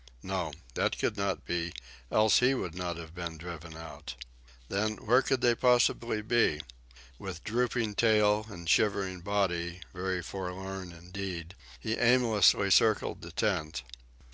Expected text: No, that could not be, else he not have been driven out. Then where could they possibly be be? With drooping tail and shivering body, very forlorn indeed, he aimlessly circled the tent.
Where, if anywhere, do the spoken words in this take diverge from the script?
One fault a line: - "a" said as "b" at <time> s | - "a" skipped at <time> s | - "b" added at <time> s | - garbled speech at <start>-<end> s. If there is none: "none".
- "would" added at 2.5 s
- "be" skipped at 6.6 s